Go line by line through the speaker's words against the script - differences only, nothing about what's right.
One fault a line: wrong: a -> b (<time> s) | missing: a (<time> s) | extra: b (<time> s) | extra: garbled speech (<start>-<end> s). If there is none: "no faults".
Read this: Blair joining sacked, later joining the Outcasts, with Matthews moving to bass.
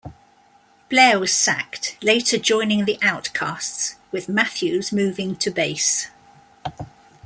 wrong: joining -> was (1.2 s)